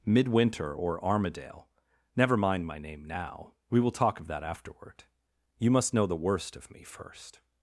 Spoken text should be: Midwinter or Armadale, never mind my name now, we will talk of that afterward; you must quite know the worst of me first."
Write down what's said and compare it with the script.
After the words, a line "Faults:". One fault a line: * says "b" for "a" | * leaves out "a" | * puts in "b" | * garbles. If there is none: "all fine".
Midwinter or Armadale, never mind my name now, we will talk of that afterward; you must know the worst of me first."
Faults:
* leaves out "quite"